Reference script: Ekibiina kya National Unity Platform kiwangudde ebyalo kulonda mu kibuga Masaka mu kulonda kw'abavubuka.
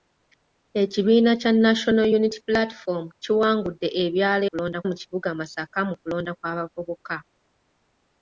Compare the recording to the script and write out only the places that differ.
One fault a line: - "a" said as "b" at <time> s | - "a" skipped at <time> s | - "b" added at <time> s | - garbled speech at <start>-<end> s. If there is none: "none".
none